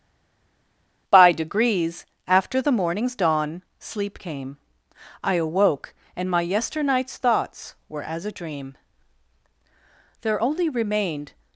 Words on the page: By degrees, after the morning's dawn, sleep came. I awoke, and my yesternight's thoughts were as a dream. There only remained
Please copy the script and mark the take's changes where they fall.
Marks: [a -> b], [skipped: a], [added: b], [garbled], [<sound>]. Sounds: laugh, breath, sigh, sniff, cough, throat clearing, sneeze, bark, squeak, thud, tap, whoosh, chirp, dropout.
By degrees, after the morning's dawn, sleep came. I awoke, and my yesternight's thoughts were as a dream. There only remained